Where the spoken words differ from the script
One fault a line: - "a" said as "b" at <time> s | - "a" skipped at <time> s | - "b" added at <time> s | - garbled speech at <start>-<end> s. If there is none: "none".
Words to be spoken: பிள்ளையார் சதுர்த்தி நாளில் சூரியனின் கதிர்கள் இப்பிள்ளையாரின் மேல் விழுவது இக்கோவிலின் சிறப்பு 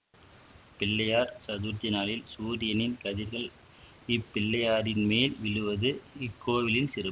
none